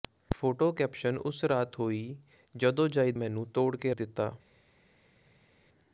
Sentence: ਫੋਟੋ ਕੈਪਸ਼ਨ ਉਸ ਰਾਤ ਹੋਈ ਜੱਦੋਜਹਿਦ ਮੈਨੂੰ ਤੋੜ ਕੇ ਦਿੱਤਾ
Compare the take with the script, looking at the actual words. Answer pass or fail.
pass